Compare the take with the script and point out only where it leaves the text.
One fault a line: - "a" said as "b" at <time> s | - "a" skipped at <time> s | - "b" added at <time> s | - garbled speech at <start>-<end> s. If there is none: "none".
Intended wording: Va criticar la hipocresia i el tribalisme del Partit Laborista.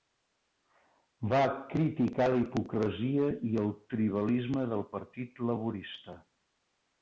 none